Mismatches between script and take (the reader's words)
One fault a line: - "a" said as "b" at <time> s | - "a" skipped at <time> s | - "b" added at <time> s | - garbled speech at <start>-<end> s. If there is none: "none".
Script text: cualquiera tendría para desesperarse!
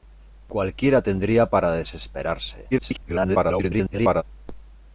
- garbled speech at 2.7-4.2 s